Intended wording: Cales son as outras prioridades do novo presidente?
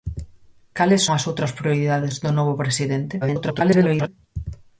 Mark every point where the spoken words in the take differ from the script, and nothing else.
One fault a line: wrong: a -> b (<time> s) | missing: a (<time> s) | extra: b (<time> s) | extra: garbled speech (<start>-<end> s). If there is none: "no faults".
missing: son (1.1 s)
extra: garbled speech (3.2-4.1 s)